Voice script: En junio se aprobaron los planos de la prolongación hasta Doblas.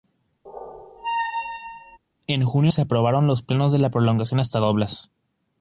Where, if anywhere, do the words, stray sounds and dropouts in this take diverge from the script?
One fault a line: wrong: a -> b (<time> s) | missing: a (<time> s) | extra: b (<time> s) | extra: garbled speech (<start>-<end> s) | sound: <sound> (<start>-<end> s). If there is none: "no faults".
sound: squeak (0.5-2.0 s)